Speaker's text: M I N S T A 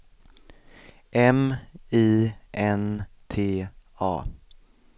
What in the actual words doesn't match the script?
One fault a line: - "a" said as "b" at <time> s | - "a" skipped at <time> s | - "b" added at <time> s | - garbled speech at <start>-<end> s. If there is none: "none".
- "S" skipped at 3.1 s